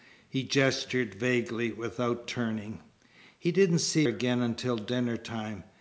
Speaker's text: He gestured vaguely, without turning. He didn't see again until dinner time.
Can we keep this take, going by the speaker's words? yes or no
yes